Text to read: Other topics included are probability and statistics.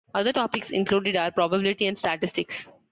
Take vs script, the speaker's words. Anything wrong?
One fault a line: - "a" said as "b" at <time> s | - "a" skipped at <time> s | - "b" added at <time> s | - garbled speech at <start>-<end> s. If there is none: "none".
none